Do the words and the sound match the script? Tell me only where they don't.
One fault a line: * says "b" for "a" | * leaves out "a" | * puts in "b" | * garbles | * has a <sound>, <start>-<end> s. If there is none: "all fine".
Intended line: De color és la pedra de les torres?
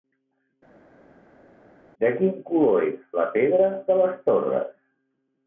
* puts in "quin"